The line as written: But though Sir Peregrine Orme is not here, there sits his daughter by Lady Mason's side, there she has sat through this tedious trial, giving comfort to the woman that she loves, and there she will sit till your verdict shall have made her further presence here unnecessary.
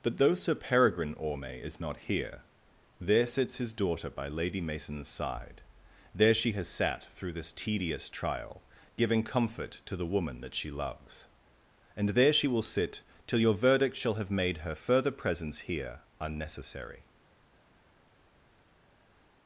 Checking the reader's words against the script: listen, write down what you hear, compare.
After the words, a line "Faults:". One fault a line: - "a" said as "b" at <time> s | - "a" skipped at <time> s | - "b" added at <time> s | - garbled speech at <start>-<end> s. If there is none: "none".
But though Sir Peregrine Orme is not here, there sits his daughter by Lady Mason's side, there she has sat through this tedious trial, giving comfort to the woman that she loves, and there she will sit till your verdict shall have made her further presence here unnecessary.
Faults:
none